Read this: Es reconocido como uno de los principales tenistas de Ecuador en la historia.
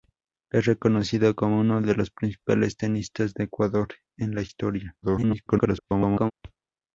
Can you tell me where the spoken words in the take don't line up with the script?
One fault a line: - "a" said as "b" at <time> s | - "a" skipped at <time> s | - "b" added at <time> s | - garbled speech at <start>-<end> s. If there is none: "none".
- garbled speech at 5.0-6.3 s